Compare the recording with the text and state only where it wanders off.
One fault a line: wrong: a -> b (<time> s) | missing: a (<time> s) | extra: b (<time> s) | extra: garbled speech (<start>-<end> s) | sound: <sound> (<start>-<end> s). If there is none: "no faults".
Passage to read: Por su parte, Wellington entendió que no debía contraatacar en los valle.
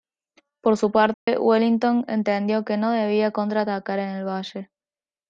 sound: dropout (1.1-1.3 s)
wrong: los -> el (4.1 s)